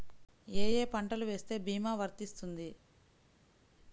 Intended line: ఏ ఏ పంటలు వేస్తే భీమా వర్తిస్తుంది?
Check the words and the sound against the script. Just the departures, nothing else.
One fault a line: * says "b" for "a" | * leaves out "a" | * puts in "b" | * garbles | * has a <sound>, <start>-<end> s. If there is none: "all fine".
all fine